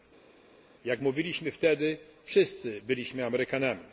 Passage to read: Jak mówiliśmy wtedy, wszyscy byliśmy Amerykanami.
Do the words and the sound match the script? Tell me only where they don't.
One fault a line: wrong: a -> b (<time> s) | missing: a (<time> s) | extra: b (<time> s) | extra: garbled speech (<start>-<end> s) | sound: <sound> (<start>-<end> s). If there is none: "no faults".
no faults